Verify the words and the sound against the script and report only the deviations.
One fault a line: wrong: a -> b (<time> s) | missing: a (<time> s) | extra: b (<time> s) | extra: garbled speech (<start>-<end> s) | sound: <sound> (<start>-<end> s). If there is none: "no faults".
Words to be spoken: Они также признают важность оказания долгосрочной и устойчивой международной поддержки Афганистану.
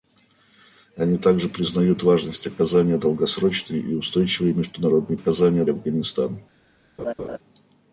wrong: поддержки -> оказания (5.1 s)
sound: laugh (7.0-7.4 s)